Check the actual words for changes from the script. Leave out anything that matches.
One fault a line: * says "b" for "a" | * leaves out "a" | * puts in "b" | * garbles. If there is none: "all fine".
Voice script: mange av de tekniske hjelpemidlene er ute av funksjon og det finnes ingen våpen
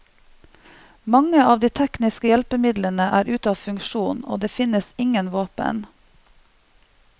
all fine